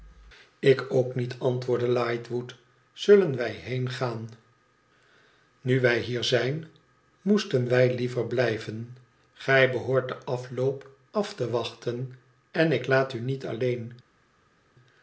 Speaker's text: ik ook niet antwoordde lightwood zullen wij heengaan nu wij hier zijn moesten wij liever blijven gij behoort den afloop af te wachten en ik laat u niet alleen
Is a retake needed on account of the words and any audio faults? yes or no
no